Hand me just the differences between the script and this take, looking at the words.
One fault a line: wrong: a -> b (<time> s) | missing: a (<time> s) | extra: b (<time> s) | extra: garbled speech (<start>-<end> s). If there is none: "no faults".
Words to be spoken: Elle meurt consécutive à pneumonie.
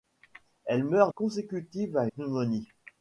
no faults